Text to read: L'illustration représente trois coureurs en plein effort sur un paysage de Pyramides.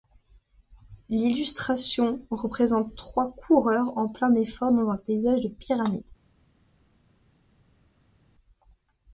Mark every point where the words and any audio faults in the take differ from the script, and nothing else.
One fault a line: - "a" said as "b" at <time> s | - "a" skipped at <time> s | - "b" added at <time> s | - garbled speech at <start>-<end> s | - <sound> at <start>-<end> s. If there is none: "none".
- "sur" said as "dans" at 4.7 s